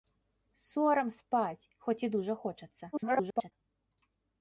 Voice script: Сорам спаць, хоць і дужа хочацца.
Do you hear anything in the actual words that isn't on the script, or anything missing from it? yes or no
yes